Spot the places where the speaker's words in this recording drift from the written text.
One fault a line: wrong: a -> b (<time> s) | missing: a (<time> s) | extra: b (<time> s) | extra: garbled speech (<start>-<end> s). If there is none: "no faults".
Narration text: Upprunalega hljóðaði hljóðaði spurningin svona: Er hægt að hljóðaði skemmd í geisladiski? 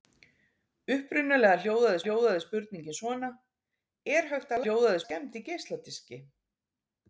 no faults